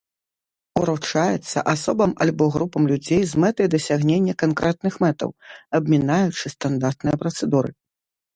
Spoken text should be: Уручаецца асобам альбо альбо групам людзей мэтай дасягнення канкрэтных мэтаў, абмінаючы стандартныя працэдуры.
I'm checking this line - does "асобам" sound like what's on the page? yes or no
yes